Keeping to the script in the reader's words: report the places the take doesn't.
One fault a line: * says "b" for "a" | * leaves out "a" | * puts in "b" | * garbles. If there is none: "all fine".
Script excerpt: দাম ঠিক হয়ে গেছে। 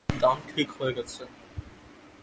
all fine